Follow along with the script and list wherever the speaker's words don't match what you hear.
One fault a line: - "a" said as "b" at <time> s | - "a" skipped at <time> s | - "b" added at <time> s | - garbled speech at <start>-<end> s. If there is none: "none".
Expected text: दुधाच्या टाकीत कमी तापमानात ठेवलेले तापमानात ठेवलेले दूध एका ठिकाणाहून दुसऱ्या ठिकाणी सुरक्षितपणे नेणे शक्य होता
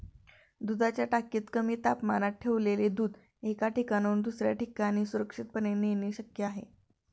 - "तापमानात ठेवलेले" skipped at 2.9 s
- "होता" said as "आहे" at 6.4 s